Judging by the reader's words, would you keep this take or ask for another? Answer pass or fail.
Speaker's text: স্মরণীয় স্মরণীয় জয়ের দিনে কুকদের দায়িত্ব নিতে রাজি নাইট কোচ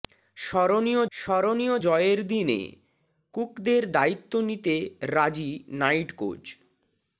pass